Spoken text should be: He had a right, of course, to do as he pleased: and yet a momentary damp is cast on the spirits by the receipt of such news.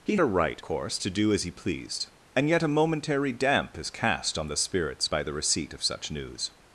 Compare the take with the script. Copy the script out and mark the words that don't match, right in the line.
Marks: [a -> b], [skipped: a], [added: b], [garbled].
He [skipped: had] a right, [skipped: of] course, to do as he pleased: and yet a momentary damp is cast on the spirits by the receipt of such news.